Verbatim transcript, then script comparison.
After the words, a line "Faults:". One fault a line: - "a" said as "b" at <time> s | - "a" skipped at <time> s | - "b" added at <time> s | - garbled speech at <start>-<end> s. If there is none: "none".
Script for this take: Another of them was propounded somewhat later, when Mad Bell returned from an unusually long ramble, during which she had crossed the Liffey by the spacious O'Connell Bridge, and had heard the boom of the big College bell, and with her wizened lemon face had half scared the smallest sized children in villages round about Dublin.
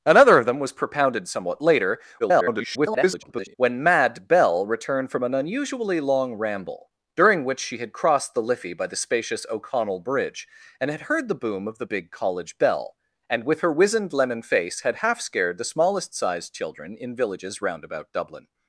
Another of them was propounded somewhat later, [garbled] when Mad Bell returned from an unusually long ramble, during which she had crossed the Liffey by the spacious O'Connell Bridge, and had heard the boom of the big College bell, and with her wizened lemon face had half scared the smallest sized children in villages round about Dublin.
Faults:
- garbled speech at 2.2-3.5 s